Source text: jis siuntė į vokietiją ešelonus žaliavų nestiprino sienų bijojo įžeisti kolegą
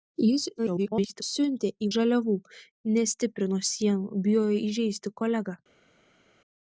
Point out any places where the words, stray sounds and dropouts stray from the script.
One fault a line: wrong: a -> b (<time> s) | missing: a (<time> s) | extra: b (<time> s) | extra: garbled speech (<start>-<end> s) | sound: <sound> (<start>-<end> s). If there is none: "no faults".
extra: garbled speech (0.6-1.2 s)
missing: vokietiją ešelonus (1.9 s)